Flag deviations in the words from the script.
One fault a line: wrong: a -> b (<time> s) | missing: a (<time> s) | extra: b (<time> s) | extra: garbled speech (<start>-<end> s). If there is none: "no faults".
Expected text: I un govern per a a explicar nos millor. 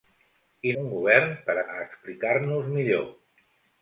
no faults